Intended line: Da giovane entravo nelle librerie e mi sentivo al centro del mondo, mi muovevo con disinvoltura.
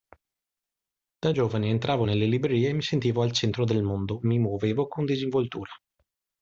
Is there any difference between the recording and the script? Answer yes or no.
no